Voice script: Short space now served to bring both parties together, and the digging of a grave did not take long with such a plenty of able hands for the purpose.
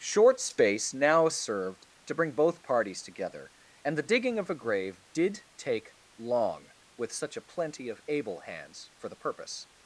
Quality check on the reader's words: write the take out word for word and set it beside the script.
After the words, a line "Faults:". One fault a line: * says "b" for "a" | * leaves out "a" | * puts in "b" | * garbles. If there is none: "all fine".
Short space now served to bring both parties together, and the digging of a grave did take long with such a plenty of able hands for the purpose.
Faults:
* leaves out "not"